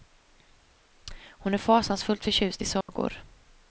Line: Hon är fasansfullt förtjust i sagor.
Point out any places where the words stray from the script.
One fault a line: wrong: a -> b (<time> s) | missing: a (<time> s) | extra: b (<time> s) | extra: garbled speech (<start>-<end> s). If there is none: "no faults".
no faults